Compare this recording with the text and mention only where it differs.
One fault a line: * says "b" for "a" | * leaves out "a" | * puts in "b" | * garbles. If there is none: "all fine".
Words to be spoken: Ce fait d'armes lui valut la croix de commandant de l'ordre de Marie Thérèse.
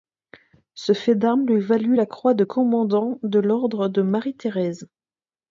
all fine